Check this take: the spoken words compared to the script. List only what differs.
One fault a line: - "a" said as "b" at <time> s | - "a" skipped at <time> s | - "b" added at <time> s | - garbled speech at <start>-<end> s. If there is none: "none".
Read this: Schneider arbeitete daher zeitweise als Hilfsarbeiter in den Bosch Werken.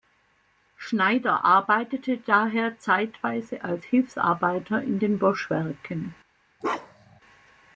none